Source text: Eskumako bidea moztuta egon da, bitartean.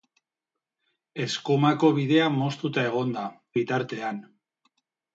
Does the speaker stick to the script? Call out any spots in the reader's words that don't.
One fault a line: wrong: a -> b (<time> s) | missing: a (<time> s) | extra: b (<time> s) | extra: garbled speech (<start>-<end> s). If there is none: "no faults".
no faults